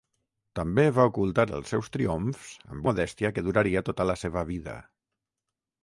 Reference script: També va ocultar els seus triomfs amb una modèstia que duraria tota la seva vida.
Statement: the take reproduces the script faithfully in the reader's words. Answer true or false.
false